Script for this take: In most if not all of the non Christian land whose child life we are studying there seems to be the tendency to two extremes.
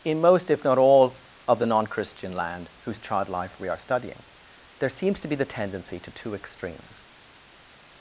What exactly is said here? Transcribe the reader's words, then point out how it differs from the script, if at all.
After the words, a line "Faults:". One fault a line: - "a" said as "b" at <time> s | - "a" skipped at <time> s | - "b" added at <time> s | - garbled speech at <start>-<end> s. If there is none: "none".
In most if not all of the non Christian land whose child life we are studying there seems to be the tendency to two extremes.
Faults:
none